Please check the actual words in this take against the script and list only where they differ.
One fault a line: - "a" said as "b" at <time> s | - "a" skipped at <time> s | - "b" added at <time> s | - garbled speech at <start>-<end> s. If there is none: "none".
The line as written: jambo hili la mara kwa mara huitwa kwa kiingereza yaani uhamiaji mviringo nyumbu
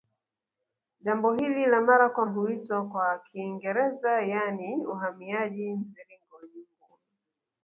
- "mara" skipped at 2.2 s